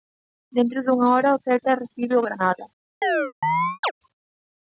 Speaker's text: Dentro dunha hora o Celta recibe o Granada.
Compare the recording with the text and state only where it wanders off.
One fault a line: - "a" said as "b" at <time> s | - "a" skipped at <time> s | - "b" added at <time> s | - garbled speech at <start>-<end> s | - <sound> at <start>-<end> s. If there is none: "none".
- chirp at 3.0-3.9 s